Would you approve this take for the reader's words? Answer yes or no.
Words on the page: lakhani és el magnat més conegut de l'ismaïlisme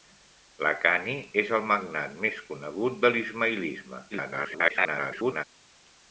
no